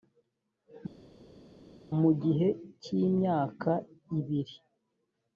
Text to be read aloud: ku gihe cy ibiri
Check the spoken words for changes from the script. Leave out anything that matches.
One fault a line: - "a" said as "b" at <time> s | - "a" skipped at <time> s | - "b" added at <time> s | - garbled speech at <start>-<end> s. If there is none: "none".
- "ku" said as "mu" at 2.0 s
- "imyaka" added at 3.1 s